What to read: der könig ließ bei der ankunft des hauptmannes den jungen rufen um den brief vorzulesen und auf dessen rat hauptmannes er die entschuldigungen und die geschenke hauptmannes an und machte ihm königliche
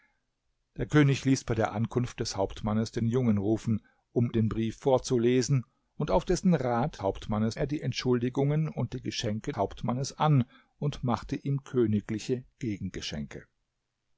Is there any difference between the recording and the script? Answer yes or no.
no